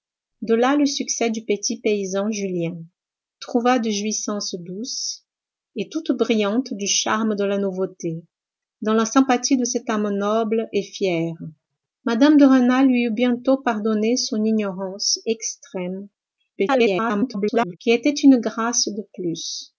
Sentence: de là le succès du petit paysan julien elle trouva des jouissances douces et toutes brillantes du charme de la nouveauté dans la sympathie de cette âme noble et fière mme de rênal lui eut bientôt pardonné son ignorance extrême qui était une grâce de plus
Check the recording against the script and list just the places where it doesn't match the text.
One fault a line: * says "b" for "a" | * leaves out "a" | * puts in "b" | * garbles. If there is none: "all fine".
* leaves out "elle"
* garbles